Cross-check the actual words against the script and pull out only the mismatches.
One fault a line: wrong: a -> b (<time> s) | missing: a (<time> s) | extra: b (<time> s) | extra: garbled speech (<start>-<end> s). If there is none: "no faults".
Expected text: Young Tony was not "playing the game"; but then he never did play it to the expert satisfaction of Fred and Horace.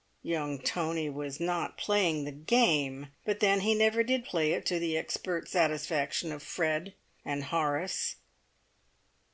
no faults